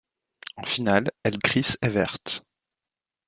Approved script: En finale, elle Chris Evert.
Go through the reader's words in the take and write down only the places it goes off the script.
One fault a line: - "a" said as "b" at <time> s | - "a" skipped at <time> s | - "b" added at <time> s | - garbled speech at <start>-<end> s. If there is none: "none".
none